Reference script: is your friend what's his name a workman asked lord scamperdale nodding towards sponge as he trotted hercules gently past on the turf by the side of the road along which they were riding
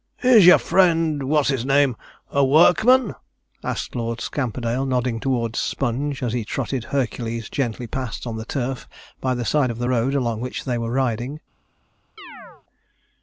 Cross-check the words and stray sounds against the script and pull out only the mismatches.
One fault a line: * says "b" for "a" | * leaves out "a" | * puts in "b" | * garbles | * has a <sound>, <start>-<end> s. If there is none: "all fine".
* has a chirp, 12.2-12.6 s